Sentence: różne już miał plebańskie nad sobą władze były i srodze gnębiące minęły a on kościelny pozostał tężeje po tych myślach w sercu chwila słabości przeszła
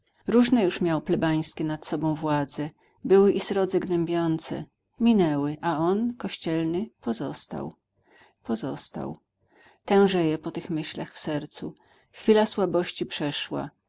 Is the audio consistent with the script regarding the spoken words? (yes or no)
no